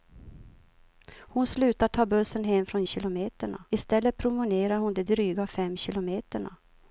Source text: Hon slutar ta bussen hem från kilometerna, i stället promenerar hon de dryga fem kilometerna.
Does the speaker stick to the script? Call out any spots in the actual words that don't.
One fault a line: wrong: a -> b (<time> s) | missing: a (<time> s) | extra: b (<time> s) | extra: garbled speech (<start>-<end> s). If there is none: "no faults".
no faults